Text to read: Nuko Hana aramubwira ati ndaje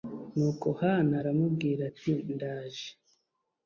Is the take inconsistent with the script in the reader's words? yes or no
no